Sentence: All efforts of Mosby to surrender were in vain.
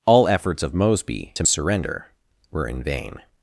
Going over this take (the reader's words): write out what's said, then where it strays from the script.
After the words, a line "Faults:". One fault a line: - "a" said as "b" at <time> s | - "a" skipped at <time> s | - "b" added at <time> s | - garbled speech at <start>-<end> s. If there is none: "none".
All efforts of Mosby to surrender were in vain.
Faults:
none